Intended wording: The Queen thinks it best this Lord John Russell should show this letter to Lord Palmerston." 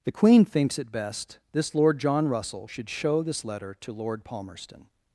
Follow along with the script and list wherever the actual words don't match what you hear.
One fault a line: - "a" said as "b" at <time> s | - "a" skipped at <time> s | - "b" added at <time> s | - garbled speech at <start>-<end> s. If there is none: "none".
none